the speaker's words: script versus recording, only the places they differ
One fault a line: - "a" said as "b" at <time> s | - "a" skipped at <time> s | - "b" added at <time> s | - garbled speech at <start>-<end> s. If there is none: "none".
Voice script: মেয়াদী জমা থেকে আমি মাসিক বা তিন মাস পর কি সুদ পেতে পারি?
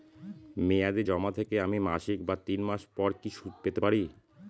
none